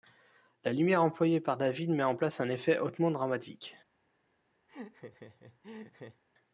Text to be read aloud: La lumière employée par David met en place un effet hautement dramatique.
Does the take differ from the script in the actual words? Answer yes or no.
no